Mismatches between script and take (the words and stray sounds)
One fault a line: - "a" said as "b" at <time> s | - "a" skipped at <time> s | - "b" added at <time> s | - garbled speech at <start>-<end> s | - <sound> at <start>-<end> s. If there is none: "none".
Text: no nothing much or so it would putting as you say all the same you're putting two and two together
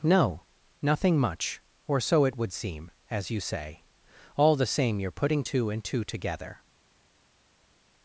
- "putting" said as "seem" at 2.5 s